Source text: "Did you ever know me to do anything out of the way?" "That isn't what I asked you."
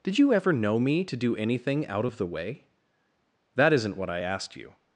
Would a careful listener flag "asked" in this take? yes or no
no